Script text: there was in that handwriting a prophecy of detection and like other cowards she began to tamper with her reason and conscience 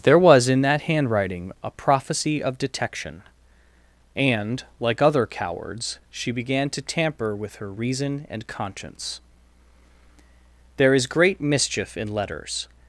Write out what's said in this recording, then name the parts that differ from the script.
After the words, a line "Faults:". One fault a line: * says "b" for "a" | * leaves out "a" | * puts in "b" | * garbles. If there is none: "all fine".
there was in that handwriting a prophecy of detection and like other cowards she began to tamper with her reason and conscience there is great mischief in letters
Faults:
* puts in "there is great mischief in letters"